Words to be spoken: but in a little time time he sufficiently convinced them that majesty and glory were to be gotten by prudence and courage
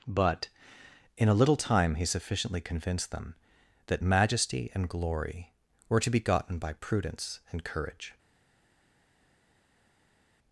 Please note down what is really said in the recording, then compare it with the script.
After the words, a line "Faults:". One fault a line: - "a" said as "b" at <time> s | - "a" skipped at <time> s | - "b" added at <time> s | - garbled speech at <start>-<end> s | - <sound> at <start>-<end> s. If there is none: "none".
but in a little time he sufficiently convinced them that majesty and glory were to be gotten by prudence and courage
Faults:
- "time" skipped at 1.9 s